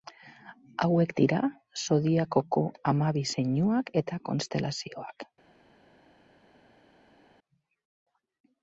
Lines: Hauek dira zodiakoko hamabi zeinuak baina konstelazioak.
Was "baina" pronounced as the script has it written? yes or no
no